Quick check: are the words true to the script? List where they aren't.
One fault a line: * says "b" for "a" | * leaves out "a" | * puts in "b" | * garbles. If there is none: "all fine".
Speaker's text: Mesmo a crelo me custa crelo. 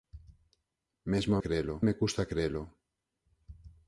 all fine